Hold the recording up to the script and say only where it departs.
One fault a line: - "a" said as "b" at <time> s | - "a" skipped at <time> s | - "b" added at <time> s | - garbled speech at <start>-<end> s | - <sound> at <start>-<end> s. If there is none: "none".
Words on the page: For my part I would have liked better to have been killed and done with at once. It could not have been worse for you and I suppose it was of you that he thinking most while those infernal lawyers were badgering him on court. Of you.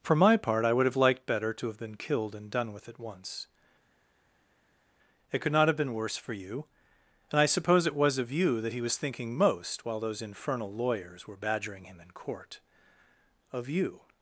- "was" added at 8.8 s
- "on" said as "in" at 12.0 s